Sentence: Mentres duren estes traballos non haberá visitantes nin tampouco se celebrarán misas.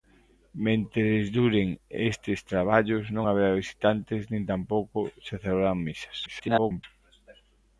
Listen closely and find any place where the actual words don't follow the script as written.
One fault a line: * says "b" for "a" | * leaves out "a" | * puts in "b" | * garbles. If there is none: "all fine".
* garbles